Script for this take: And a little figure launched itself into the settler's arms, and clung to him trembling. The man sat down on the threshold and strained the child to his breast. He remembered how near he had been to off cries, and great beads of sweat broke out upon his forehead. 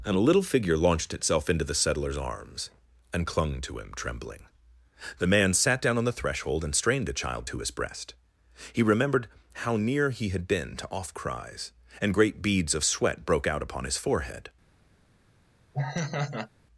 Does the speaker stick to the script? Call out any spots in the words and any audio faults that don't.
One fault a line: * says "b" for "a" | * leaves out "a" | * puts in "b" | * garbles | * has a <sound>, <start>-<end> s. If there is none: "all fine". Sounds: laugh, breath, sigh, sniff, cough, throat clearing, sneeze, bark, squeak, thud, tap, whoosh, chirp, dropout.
* has a laugh, 15.7-16.5 s